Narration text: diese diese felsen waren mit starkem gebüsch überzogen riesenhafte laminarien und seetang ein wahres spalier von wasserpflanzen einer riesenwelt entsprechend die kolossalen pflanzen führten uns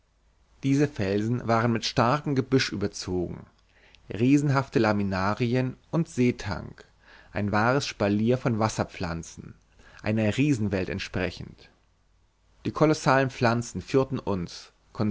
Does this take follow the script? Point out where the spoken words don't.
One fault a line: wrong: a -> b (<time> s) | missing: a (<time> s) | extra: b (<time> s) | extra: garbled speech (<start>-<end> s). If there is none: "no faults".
missing: diese (0.9 s)